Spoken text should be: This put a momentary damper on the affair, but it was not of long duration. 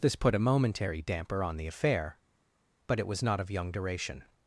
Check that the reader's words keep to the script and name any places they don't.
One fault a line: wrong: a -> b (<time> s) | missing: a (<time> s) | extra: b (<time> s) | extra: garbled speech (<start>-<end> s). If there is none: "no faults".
wrong: long -> young (3.5 s)